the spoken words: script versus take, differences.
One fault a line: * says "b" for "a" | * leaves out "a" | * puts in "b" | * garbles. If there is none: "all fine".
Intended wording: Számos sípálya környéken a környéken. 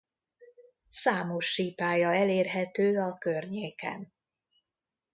* says "elérhető" for "környéken"